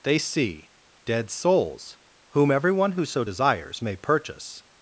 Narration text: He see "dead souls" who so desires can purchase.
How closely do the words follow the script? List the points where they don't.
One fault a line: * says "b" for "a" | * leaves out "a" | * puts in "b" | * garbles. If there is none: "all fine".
* says "They" for "He"
* puts in "whom everyone"
* says "may" for "can"